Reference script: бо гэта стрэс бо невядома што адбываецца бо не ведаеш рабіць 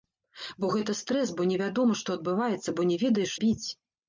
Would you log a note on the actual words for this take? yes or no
no